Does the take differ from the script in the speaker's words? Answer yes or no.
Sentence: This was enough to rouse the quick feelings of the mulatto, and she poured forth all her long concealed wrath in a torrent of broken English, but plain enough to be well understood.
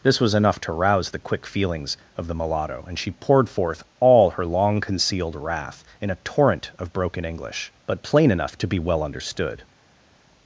no